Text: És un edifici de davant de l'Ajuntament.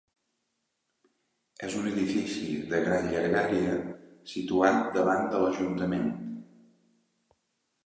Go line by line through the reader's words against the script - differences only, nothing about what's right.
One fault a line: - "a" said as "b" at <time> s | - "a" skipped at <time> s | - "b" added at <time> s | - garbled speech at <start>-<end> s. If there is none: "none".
- "gran llargària situat" added at 2.9 s